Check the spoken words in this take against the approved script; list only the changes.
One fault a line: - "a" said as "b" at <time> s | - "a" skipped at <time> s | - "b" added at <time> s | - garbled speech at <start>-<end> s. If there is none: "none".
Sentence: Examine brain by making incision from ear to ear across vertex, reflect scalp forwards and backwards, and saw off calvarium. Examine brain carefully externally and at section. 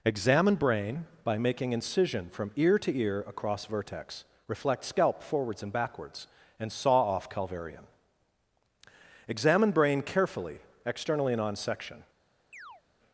- "at" said as "on" at 11.4 s